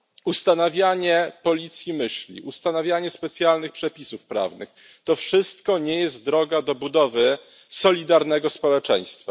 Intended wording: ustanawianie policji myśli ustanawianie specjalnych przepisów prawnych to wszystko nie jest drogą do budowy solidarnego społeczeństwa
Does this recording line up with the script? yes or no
yes